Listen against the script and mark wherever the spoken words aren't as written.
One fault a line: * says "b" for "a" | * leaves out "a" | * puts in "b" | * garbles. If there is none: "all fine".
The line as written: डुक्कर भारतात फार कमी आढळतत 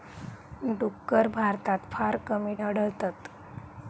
all fine